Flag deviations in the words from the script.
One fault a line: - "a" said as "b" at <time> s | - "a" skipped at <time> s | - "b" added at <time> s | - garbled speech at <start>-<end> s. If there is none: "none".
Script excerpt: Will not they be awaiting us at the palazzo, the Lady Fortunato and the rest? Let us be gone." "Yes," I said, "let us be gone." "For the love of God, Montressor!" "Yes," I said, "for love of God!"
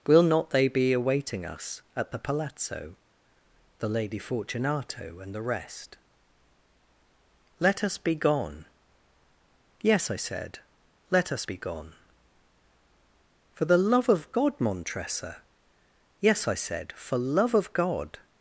none